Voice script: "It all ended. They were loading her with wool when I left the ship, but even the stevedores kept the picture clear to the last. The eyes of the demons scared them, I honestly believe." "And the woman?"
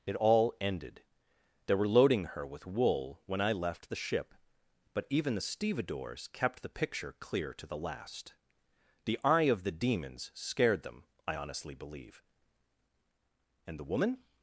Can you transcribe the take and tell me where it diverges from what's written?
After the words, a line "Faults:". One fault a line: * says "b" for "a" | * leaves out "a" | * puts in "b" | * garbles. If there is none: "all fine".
"It all ended. They were loading her with wool when I left the ship, but even the stevedores kept the picture clear to the last. The eye of the demons scared them, I honestly believe." "And the woman?"
Faults:
* says "eye" for "eyes"